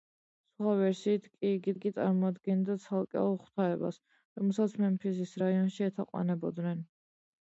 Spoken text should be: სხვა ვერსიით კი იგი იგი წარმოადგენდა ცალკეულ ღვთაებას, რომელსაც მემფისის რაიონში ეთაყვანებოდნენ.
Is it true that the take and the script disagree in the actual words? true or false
false